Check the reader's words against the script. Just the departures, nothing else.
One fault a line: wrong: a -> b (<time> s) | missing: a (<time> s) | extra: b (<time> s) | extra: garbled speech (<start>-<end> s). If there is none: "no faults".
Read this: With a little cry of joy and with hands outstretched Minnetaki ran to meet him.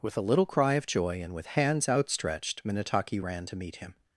no faults